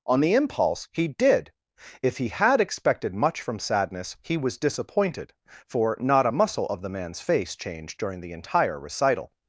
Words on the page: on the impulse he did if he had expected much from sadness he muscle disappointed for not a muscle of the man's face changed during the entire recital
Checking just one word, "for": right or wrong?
right